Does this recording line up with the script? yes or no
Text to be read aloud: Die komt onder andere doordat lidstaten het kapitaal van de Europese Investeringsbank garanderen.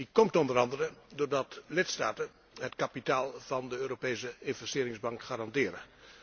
yes